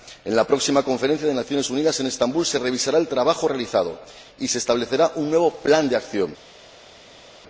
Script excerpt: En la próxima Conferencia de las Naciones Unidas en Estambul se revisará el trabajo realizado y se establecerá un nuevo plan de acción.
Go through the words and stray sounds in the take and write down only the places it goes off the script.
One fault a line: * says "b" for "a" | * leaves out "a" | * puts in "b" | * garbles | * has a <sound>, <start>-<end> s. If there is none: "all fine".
all fine